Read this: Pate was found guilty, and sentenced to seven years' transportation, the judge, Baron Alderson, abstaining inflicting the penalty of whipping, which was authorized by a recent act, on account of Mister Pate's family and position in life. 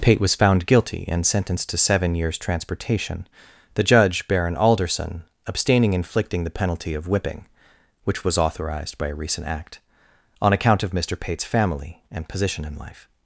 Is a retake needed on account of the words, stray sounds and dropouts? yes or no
no